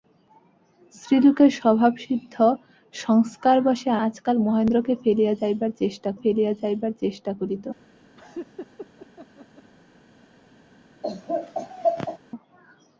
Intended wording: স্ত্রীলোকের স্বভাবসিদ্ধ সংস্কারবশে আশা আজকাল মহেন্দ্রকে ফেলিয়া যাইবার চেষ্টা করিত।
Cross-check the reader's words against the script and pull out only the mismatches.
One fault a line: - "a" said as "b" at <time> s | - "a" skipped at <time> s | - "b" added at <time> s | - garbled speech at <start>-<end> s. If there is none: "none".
- "আশা" skipped at 3.9 s
- "ফেলিয়া যাইবার চেষ্টা" added at 6.2 s